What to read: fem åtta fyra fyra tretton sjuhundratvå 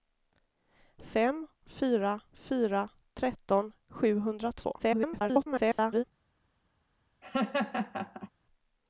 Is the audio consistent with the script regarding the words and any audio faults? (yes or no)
no